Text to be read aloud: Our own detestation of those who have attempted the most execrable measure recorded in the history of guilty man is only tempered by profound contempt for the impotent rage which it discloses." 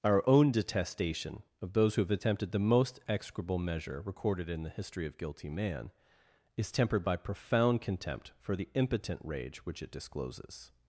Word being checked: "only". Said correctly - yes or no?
no